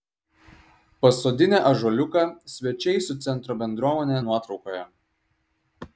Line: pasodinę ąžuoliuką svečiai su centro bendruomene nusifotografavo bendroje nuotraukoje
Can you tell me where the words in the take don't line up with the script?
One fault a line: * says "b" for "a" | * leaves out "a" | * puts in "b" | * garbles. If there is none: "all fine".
* leaves out "nusifotografavo bendroje"